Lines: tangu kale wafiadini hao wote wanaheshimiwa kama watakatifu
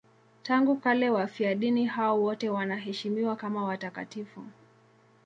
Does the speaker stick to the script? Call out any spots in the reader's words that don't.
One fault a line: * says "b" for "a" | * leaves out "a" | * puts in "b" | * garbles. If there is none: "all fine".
all fine